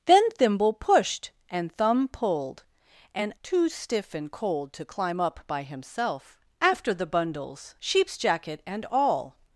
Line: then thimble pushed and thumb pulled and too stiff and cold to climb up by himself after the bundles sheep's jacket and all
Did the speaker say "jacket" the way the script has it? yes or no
yes